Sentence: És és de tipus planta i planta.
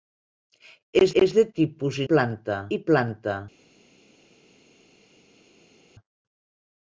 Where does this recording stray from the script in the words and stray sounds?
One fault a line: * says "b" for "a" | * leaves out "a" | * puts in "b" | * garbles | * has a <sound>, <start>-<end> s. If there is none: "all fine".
all fine